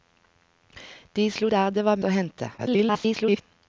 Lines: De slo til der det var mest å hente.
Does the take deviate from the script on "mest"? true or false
true